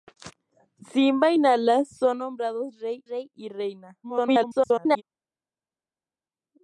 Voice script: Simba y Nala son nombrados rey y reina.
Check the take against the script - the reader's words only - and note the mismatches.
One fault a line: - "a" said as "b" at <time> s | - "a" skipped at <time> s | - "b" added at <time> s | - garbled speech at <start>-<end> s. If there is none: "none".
- "rey" added at 3.1 s
- garbled speech at 4.0-5.0 s